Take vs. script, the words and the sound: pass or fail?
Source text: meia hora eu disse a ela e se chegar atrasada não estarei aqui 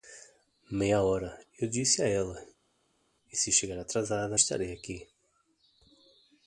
fail